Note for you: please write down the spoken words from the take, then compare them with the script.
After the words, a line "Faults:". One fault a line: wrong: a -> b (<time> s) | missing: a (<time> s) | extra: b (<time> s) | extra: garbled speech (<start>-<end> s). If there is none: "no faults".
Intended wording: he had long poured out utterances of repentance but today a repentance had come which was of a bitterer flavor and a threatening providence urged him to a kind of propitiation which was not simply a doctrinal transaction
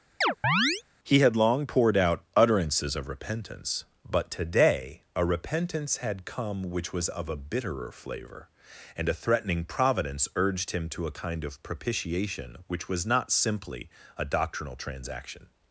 he had long poured out utterances of repentance but today a repentance had come which was of a bitterer flavor and a threatening providence urged him to a kind of propitiation which was not simply a doctrinal transaction
Faults:
no faults